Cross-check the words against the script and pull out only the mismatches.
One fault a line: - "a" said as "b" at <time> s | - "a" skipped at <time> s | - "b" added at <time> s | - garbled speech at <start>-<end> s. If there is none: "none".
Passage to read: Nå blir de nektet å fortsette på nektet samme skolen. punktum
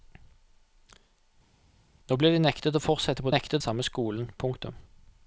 none